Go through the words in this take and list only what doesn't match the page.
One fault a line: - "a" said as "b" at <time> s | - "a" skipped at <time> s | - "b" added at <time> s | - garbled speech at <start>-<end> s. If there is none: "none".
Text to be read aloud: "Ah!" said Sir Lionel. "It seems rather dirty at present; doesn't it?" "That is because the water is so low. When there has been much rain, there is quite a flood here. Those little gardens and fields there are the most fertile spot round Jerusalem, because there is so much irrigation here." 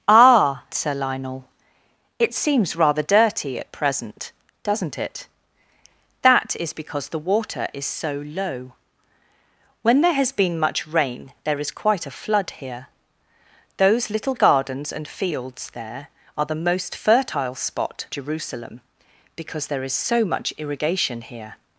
- "said" skipped at 0.7 s
- "round" skipped at 18.1 s